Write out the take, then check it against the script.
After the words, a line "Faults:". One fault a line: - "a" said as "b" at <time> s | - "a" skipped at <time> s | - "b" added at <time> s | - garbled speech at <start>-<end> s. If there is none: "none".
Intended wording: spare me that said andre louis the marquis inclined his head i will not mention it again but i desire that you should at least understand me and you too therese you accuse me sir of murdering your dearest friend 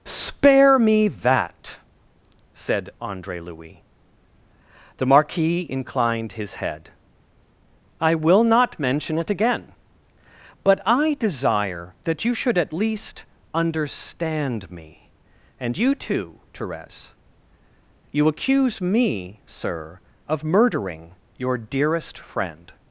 spare me that said andre louis the marquis inclined his head i will not mention it again but i desire that you should at least understand me and you too therese you accuse me sir of murdering your dearest friend
Faults:
none